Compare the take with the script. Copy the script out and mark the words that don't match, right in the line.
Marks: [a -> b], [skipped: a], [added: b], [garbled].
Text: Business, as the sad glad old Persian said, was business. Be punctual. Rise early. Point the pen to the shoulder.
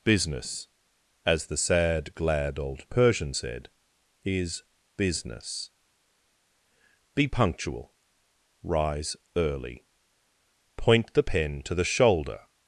Business, as the sad glad old Persian said, [was -> is] business. Be punctual. Rise early. Point the pen to the shoulder.